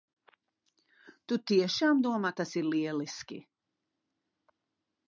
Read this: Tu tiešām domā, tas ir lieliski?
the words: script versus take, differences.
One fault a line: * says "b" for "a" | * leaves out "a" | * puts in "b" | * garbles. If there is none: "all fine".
all fine